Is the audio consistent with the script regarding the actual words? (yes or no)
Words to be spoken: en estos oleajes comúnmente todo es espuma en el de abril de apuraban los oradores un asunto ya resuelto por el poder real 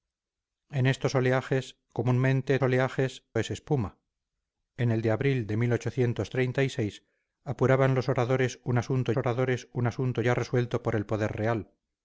no